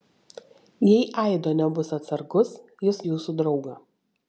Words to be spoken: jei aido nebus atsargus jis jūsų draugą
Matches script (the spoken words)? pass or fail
pass